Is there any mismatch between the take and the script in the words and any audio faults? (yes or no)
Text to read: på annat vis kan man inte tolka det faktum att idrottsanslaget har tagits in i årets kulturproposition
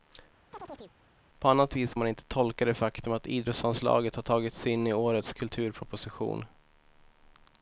yes